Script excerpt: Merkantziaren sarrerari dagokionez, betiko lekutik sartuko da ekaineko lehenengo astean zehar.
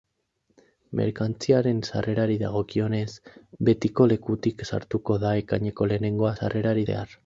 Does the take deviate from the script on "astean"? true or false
true